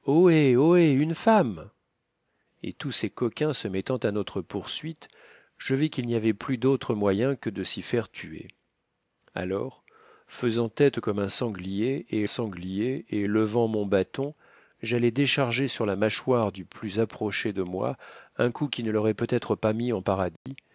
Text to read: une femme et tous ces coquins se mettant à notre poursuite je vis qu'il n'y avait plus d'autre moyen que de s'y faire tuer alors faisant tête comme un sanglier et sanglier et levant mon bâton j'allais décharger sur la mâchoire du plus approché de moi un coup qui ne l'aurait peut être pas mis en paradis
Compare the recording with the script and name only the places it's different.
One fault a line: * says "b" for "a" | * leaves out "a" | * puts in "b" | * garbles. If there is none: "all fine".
all fine